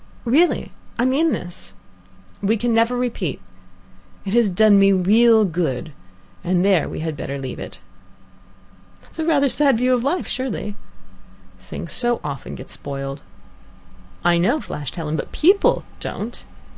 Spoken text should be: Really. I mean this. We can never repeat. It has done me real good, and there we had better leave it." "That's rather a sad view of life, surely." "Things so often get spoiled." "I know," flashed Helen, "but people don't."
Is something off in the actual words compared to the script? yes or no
no